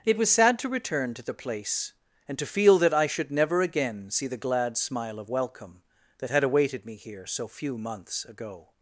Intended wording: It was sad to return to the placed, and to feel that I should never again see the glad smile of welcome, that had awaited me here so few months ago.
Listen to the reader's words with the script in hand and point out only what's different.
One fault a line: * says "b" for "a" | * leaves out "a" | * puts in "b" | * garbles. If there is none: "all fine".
* says "place" for "placed"